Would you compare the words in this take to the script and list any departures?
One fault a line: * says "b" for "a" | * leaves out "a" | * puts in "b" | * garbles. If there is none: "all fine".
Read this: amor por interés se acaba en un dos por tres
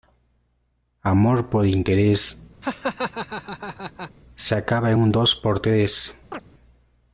all fine